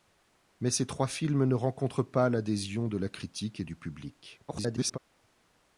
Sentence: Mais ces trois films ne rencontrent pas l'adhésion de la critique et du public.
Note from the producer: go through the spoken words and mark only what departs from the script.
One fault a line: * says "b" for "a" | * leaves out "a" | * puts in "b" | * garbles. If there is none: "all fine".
* garbles